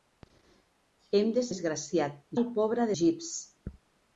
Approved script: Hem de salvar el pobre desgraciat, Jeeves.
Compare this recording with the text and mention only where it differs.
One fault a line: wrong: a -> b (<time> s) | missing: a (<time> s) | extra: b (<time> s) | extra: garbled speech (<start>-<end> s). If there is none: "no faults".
wrong: salvar -> desgraciat (1.5 s)
missing: desgraciat (2.9 s)